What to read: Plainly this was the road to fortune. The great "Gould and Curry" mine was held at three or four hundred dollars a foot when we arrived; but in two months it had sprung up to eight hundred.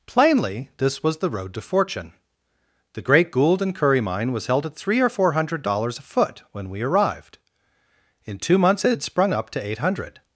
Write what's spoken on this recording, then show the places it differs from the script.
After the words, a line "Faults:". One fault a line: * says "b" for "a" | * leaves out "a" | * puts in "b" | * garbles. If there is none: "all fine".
Plainly this was the road to fortune. The great "Gould and Curry" mine was held at three or four hundred dollars a foot when we arrived; in two months it had sprung up to eight hundred.
Faults:
* leaves out "but"